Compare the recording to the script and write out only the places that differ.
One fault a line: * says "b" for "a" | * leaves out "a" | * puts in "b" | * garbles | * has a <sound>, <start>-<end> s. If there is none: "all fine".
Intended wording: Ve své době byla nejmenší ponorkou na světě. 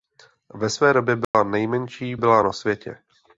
* has a dropout, 1.2-1.3 s
* says "byla" for "ponorkou"